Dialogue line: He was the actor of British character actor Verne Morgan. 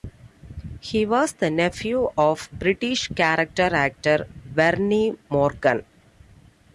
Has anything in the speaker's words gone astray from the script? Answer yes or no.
yes